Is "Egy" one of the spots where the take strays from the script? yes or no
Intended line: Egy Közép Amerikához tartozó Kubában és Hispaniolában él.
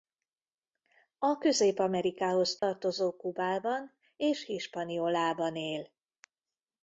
yes